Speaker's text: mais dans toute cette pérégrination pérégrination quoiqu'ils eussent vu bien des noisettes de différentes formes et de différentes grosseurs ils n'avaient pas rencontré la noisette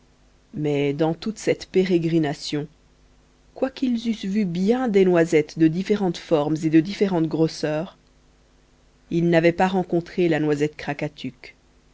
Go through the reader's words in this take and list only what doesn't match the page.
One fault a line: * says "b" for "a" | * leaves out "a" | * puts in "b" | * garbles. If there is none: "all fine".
* leaves out "pérégrination"